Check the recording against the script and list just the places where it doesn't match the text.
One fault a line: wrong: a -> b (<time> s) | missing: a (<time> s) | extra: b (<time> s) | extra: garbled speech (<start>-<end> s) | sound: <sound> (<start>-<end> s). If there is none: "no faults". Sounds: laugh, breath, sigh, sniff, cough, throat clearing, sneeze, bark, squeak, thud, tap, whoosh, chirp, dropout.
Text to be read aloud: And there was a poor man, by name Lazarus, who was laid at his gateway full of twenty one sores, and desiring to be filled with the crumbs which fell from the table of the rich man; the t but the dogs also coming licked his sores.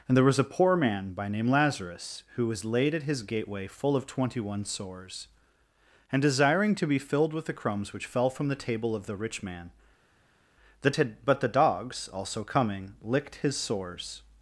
no faults